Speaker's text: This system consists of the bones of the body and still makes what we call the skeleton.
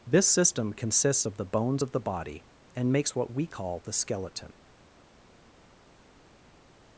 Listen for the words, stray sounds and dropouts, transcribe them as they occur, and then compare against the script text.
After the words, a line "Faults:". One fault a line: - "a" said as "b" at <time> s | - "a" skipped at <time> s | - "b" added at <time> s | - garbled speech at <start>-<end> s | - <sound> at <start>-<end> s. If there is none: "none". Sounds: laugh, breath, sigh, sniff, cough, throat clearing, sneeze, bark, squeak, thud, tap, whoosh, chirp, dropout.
This system consists of the bones of the body and makes what we call the skeleton.
Faults:
- "still" skipped at 2.9 s